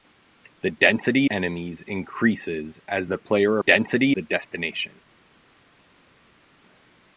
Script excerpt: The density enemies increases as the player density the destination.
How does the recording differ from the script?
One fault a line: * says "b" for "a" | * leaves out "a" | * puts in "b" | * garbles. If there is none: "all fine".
all fine